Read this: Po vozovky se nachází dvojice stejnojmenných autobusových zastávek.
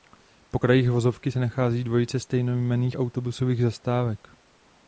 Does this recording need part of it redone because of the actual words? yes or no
yes